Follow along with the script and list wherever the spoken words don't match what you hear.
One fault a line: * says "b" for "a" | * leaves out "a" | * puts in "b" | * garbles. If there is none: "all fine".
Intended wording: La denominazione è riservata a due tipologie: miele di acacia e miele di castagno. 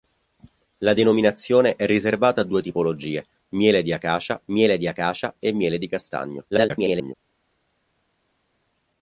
* puts in "miele di acacia"
* garbles